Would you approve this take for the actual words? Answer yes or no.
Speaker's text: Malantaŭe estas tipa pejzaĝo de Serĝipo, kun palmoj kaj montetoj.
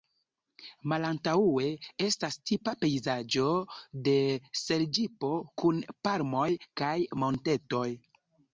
yes